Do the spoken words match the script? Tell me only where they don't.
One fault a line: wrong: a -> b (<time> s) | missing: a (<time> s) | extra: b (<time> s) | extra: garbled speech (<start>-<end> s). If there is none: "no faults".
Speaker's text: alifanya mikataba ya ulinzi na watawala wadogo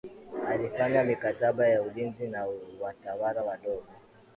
no faults